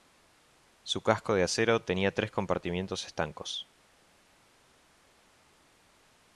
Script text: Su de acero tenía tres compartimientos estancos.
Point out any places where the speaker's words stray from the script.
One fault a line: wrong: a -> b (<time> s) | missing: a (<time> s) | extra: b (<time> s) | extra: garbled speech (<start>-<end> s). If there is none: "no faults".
extra: casco (1.0 s)